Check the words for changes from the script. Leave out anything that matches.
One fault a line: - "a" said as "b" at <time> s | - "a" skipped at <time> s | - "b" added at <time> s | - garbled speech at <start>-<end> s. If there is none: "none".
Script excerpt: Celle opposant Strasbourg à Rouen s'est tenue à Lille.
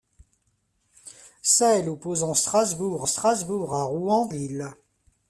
- "Strasbourg" added at 3.0 s
- "s'est tenue à" skipped at 4.3 s